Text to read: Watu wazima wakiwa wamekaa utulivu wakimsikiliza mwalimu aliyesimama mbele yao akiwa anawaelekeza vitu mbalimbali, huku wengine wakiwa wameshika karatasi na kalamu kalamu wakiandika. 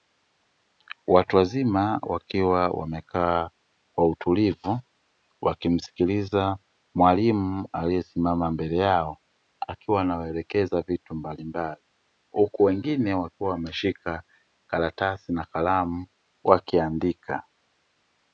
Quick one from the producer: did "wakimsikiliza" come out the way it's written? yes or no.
yes